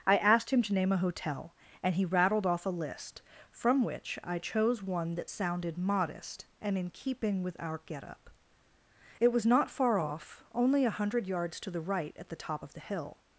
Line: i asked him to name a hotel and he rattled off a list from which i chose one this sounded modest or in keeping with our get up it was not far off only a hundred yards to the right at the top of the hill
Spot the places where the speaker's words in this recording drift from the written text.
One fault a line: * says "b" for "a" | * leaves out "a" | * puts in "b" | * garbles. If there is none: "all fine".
* says "that" for "this"
* says "and" for "or"